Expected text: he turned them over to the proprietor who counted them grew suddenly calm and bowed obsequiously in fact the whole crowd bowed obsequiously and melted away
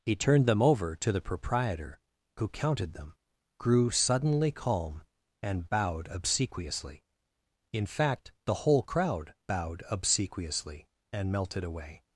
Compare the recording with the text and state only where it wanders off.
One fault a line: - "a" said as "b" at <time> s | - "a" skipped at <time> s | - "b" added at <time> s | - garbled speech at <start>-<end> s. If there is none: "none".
none